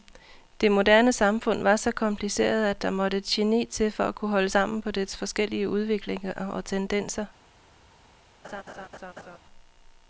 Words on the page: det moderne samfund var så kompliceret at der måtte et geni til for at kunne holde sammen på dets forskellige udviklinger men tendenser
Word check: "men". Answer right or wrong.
wrong